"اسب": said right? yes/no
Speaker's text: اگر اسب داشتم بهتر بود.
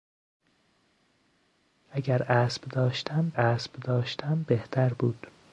yes